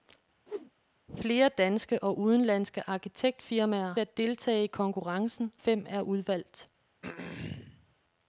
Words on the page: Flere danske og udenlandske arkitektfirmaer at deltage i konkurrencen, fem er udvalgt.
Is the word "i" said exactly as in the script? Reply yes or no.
yes